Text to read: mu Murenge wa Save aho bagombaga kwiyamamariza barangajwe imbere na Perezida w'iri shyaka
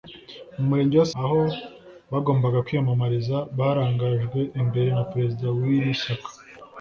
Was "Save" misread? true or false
true